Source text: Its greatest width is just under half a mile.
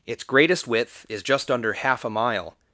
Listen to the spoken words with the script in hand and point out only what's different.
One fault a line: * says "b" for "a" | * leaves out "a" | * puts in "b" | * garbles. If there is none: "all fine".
all fine